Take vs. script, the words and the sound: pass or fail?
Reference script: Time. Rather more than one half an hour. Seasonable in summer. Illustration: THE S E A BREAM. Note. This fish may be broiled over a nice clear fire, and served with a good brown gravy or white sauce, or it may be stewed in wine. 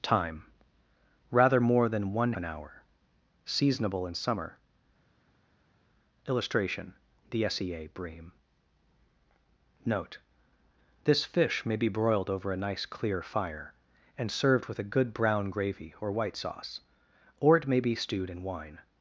fail